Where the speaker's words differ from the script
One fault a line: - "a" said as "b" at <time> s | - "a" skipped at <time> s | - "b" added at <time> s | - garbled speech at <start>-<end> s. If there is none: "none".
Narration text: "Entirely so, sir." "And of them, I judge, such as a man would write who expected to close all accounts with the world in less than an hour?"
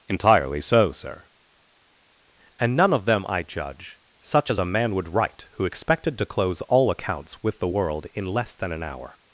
- "none" added at 2.8 s